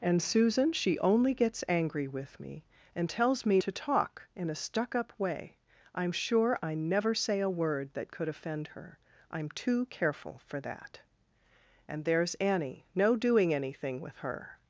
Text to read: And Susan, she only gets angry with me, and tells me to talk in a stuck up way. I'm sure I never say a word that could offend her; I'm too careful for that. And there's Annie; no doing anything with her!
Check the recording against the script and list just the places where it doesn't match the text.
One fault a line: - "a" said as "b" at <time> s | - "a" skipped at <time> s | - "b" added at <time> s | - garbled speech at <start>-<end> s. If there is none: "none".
none